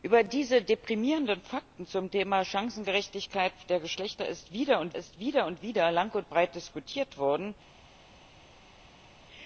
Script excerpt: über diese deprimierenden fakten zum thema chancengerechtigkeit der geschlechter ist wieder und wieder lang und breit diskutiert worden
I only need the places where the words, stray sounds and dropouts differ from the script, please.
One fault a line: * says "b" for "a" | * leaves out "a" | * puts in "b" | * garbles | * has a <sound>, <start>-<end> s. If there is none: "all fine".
* puts in "ist wieder und"